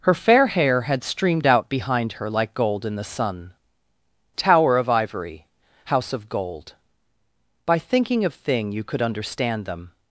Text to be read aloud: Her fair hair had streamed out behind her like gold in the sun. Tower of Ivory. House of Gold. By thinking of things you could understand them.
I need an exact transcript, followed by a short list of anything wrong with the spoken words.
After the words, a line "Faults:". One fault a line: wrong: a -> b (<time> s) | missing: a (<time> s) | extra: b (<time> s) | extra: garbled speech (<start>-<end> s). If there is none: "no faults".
Her fair hair had streamed out behind her like gold in the sun. Tower of Ivory. House of Gold. By thinking of thing you could understand them.
Faults:
wrong: things -> thing (8.3 s)